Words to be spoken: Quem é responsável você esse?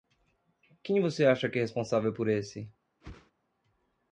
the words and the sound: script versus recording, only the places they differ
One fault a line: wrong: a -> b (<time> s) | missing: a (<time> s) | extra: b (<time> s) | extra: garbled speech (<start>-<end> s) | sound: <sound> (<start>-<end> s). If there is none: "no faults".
extra: você acha que (1.0 s)
wrong: você -> por (2.1 s)
sound: whoosh (3.0-3.3 s)